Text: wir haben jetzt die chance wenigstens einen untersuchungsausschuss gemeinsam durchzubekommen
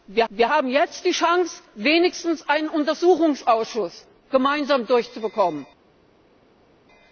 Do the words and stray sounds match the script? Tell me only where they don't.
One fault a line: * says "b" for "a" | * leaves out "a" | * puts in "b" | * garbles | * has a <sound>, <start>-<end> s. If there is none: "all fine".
* puts in "wir"